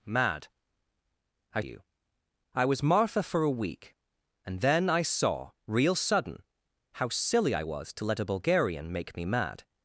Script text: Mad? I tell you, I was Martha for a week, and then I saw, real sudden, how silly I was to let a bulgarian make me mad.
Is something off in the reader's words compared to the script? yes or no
yes